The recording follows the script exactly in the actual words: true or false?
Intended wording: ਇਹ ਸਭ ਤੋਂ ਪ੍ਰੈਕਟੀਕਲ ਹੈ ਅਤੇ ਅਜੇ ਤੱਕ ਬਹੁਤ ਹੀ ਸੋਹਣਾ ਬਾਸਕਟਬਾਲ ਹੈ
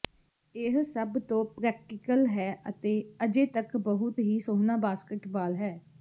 true